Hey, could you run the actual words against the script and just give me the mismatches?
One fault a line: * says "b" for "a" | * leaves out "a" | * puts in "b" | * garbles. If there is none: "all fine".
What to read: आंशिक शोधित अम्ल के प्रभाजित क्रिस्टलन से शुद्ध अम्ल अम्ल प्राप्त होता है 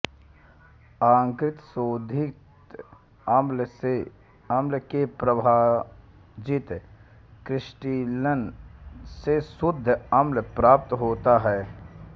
* leaves out "अम्ल"